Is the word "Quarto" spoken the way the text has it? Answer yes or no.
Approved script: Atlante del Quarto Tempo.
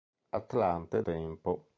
no